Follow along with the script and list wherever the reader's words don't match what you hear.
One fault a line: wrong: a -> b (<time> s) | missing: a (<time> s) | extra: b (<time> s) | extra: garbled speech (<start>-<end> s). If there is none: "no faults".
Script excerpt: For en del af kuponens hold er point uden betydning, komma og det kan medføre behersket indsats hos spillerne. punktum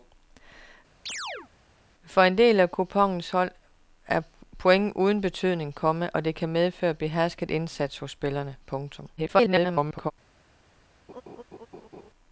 extra: garbled speech (9.2-10.1 s)